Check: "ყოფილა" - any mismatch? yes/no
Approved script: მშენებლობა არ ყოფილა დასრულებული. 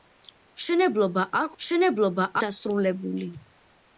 yes